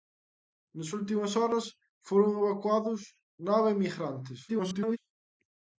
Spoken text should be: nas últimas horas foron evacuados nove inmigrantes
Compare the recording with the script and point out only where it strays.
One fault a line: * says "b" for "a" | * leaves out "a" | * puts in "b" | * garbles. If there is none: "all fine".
* garbles